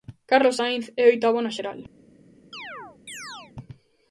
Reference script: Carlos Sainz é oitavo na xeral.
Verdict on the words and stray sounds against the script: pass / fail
fail